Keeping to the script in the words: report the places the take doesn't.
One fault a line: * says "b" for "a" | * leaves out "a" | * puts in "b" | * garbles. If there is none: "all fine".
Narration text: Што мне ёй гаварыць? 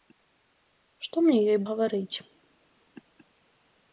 all fine